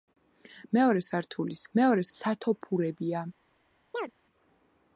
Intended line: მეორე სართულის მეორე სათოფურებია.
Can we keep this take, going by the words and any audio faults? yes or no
no